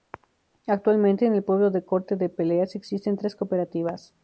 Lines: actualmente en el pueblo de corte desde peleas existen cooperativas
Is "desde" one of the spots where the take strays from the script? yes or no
yes